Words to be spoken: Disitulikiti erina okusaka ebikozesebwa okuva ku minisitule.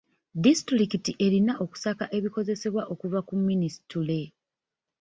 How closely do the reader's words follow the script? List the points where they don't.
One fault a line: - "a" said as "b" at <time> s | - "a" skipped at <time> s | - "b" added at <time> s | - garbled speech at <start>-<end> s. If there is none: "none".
none